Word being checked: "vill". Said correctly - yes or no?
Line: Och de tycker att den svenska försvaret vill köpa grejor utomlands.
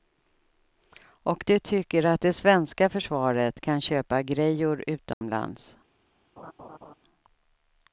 no